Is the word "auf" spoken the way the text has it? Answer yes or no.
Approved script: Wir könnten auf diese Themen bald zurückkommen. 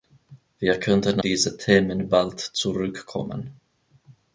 no